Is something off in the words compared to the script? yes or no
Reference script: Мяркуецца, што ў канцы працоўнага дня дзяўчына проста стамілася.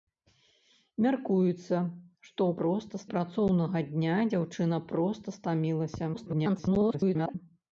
yes